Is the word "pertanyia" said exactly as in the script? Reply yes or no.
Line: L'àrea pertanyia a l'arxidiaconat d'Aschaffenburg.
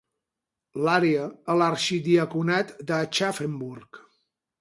no